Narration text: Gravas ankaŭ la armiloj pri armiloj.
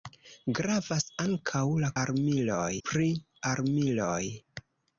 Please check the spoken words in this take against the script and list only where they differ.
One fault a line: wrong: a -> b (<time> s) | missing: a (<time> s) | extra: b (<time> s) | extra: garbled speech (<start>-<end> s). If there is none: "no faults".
no faults